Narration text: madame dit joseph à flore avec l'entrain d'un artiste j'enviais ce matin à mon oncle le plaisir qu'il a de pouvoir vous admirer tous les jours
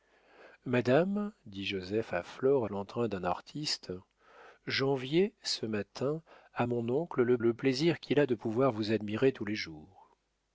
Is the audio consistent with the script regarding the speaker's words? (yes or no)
no